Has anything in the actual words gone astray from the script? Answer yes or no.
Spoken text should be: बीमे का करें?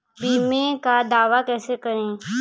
yes